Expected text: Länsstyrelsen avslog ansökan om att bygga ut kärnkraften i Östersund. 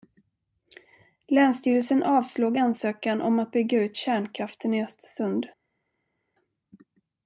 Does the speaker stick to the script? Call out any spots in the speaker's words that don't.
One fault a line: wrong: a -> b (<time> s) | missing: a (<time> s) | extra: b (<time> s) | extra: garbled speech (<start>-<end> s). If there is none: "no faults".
no faults